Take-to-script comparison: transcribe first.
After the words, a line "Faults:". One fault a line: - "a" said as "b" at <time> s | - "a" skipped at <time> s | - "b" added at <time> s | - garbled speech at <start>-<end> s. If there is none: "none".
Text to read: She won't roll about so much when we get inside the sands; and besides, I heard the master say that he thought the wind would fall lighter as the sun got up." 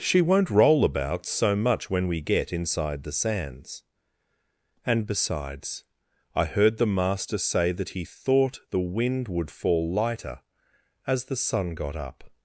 She won't roll about so much when we get inside the sands; and besides, I heard the master say that he thought the wind would fall lighter as the sun got up."
Faults:
none